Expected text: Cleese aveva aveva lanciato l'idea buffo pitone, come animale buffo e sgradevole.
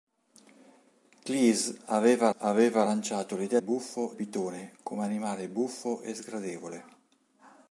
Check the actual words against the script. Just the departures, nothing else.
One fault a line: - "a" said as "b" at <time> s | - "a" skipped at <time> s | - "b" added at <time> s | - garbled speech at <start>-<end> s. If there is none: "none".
none